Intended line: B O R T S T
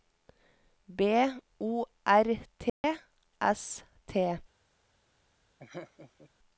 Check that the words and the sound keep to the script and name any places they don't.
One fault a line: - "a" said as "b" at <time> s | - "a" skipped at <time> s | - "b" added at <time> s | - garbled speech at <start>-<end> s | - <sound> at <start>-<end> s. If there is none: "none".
- dropout at 2.7-2.8 s
- laugh at 5.6-6.3 s